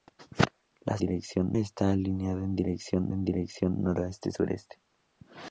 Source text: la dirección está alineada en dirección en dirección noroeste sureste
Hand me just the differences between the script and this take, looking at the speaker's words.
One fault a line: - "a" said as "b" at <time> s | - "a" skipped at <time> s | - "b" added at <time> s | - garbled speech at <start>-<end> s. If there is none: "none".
none